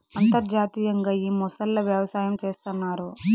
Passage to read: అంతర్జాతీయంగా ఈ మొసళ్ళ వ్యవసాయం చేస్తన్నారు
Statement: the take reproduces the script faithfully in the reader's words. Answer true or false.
true